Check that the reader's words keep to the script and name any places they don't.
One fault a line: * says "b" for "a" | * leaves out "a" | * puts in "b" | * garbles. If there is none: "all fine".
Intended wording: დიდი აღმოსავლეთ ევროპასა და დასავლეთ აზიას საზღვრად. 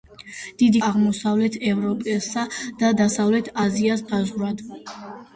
all fine